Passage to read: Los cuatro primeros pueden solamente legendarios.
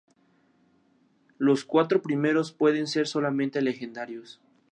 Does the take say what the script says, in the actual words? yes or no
no